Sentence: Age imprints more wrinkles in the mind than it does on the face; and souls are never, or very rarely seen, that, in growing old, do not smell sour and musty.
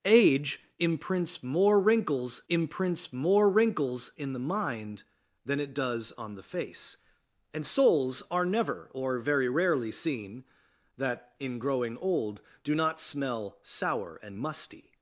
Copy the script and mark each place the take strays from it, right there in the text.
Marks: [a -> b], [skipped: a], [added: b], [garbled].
Age imprints more wrinkles [added: imprints more wrinkles] in the mind than it does on the face; and souls are never, or very rarely seen, that, in growing old, do not smell sour and musty.